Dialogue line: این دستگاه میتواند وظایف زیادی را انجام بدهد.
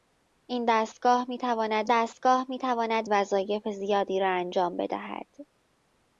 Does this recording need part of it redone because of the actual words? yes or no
yes